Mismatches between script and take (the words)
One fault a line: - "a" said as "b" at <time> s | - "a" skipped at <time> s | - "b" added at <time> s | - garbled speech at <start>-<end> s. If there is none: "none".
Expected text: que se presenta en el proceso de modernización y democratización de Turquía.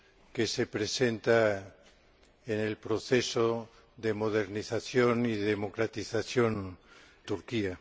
- "de" skipped at 6.8 s